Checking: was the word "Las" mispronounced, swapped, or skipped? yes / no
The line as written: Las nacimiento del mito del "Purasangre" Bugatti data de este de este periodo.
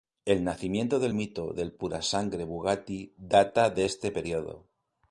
yes